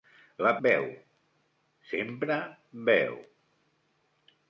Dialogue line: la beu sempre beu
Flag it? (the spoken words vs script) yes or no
no